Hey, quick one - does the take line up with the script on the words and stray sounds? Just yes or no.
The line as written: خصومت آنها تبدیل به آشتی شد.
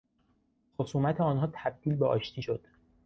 yes